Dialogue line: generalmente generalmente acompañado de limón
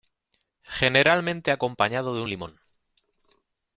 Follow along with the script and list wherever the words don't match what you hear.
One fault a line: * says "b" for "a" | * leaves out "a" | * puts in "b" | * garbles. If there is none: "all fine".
* leaves out "generalmente"
* puts in "un"